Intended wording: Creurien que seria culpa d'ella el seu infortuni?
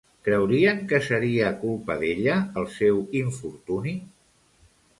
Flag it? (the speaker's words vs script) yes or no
no